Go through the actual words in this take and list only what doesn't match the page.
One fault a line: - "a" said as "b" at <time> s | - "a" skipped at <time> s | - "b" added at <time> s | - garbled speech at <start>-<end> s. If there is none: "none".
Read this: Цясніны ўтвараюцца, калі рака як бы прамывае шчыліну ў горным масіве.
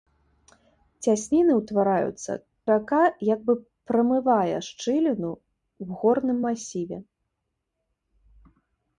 - "калі" skipped at 2.3 s